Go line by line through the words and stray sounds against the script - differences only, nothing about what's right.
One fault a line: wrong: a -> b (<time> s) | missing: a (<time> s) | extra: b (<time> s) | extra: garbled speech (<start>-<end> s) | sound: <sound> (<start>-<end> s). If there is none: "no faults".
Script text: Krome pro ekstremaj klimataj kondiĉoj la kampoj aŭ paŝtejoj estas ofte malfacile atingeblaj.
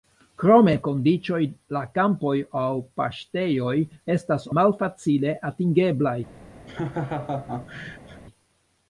missing: pro ekstremaj klimataj (0.7 s)
missing: ofte (4.5 s)
sound: laugh (6.7-8.2 s)